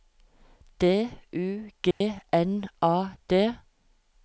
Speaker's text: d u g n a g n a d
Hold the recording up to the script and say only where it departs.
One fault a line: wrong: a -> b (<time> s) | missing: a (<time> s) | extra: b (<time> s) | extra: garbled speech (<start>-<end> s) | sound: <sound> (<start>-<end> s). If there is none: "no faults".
sound: dropout (1.9-2.0 s)
missing: g n a (3.2 s)